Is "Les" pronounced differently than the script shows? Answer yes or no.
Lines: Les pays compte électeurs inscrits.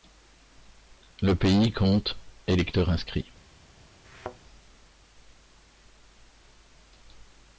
yes